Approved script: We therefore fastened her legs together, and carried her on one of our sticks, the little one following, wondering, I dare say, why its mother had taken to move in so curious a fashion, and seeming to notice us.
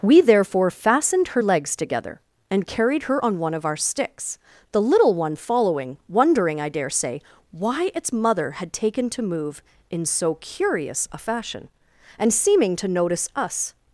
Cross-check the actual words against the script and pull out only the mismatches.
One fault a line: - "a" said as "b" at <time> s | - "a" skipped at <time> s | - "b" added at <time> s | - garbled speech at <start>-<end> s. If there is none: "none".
none